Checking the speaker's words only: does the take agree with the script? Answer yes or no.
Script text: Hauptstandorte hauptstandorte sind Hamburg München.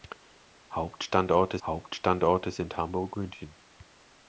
yes